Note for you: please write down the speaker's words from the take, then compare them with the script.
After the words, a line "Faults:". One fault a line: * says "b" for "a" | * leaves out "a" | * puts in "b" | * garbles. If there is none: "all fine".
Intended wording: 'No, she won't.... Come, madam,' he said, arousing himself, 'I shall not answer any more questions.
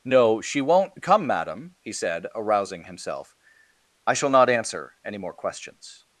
'No, she won't.... Come, madam,' he said, arousing himself, 'I shall not answer any more questions.
Faults:
all fine